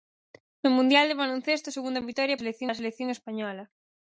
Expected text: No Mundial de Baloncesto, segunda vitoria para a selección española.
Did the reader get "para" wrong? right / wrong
wrong